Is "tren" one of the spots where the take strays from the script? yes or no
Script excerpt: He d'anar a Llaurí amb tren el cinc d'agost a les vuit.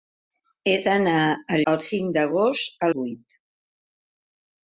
yes